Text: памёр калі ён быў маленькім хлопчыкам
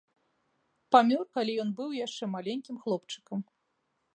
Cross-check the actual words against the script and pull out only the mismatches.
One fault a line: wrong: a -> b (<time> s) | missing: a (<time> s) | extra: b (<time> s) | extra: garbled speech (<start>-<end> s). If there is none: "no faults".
extra: яшчэ (2.1 s)